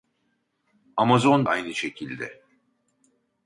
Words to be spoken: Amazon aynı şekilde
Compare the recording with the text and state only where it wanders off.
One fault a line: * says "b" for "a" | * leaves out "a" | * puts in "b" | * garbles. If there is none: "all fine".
all fine